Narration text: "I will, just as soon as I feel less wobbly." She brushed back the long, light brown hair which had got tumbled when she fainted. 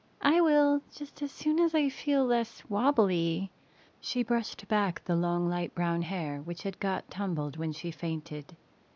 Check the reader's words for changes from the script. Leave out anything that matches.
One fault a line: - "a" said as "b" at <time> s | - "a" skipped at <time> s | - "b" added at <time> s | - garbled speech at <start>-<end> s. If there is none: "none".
none